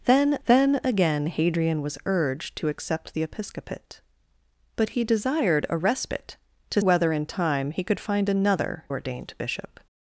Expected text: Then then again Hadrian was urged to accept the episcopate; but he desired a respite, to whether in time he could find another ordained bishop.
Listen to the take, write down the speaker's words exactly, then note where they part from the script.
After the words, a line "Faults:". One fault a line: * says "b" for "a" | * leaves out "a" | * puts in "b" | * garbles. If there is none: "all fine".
Then then again Hadrian was urged to accept the episcopate; but he desired a respite, to whether in time he could find another ordained bishop.
Faults:
all fine